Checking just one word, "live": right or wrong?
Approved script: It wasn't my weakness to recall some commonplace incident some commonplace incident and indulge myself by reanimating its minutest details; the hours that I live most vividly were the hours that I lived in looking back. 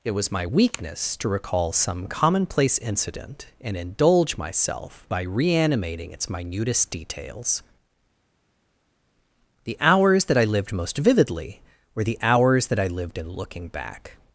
wrong